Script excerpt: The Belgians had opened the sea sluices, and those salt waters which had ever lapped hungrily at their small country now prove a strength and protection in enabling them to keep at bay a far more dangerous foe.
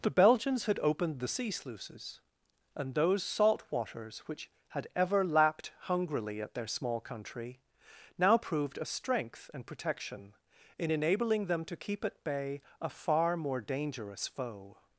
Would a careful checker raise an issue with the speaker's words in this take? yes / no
yes